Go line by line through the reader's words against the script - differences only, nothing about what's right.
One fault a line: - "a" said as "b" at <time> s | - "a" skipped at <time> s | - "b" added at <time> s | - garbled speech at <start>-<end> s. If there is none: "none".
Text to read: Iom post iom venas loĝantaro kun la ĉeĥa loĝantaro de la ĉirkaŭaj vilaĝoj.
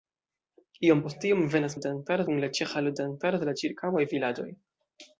none